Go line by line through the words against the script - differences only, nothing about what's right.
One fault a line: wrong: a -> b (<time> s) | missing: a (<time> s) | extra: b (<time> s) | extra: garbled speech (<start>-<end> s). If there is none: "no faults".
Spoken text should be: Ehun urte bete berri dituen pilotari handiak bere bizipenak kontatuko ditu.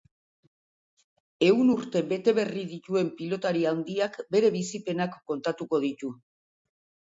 no faults